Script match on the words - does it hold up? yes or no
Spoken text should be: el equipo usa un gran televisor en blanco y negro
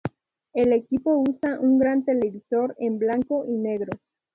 yes